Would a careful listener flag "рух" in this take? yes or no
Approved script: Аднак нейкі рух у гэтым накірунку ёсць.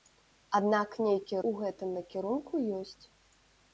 yes